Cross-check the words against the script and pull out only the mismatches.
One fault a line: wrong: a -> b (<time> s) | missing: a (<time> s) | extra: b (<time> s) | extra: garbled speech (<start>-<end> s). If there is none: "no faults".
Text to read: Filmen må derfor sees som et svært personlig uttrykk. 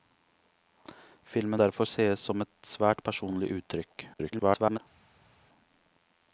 missing: må (1.6 s)
extra: garbled speech (4.1-4.8 s)